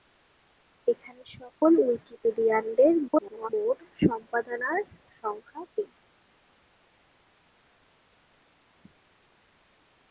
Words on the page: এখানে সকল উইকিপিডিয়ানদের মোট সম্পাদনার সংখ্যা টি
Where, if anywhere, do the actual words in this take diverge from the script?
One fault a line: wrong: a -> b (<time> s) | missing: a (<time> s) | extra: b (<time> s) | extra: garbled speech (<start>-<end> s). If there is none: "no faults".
extra: garbled speech (3.1-3.5 s)